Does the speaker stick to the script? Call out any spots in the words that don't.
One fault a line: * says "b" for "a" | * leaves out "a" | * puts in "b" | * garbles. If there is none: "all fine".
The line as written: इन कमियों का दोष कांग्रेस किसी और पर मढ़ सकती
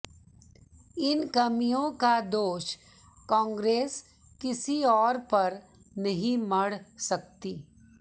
* puts in "नहीं"